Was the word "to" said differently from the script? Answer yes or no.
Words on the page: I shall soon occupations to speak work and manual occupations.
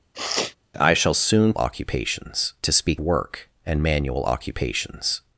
no